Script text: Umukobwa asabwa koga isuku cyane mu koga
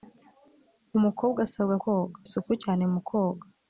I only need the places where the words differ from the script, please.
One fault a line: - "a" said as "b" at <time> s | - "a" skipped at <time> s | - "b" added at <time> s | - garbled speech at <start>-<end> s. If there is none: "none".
none